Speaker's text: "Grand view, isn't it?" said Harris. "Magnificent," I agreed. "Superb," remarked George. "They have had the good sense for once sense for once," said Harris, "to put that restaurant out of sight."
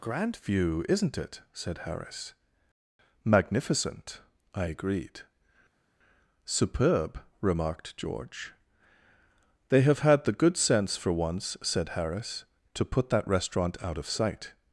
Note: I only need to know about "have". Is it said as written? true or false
true